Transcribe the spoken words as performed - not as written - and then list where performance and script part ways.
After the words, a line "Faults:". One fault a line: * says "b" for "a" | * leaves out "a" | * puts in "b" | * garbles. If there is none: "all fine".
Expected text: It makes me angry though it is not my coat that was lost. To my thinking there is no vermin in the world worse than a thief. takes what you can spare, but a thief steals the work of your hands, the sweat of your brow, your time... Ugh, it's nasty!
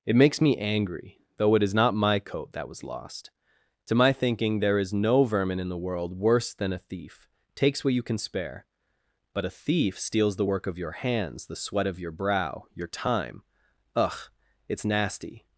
It makes me angry though it is not my coat that was lost. To my thinking there is no vermin in the world worse than a thief. takes what you can spare, but a thief steals the work of your hands, the sweat of your brow, your time... Ugh, it's nasty!
Faults:
all fine